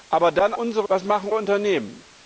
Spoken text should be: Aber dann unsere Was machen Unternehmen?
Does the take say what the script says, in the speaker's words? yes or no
yes